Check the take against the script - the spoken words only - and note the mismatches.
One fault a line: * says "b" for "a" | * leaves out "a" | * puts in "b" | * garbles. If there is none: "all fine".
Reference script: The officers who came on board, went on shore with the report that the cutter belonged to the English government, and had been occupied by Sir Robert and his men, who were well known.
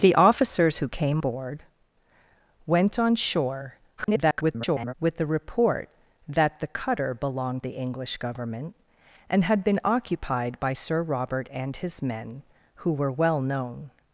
* leaves out "on"
* garbles
* leaves out "to"